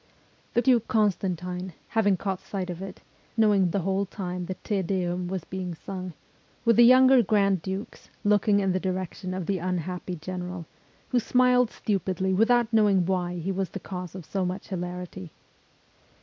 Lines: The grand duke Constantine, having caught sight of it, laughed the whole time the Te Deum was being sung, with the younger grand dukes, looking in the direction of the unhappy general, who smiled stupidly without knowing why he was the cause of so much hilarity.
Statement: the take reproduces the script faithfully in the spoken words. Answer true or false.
false